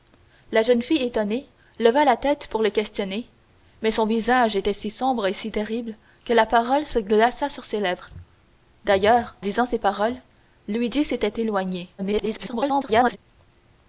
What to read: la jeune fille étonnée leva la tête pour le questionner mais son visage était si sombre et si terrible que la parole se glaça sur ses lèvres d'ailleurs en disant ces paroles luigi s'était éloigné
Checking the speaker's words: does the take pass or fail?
fail